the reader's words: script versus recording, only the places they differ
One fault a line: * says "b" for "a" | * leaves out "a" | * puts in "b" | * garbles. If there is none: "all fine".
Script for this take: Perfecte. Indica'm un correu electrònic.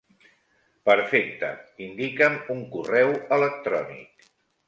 all fine